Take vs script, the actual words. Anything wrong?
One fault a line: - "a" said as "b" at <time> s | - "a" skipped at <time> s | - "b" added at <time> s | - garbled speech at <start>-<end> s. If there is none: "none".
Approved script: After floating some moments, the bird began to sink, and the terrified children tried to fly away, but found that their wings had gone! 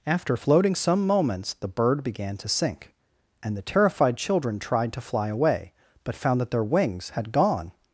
none